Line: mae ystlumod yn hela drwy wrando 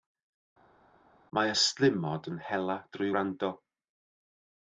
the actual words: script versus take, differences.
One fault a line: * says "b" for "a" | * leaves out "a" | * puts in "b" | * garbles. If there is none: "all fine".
all fine